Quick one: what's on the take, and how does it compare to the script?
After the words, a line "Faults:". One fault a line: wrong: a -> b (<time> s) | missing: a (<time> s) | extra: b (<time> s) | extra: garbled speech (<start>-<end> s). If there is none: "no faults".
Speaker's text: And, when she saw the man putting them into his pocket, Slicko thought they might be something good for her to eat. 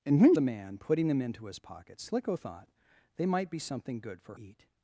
And, when the man putting them into his pocket, Slicko thought they might be something good for eat.
Faults:
missing: she saw (0.3 s)
missing: her to (4.3 s)